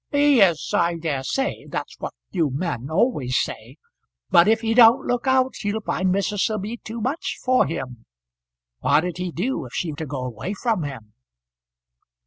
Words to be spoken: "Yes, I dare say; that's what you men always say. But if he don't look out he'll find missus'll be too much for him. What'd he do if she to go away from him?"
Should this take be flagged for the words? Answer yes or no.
no